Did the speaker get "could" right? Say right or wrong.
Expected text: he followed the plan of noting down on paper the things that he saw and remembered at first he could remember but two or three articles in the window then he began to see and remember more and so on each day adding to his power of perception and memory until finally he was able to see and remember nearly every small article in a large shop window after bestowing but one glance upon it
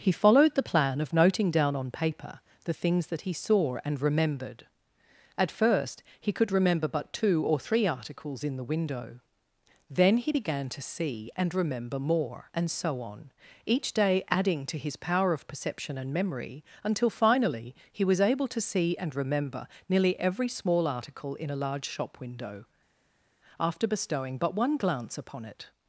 right